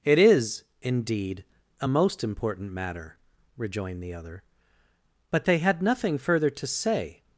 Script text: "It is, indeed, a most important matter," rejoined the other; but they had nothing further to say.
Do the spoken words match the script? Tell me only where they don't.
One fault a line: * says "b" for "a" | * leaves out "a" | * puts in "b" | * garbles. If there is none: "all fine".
all fine